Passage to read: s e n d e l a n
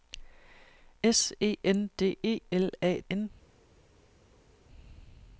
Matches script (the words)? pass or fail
pass